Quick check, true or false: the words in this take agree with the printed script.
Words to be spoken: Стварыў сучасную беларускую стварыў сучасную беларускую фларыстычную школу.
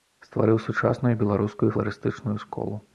false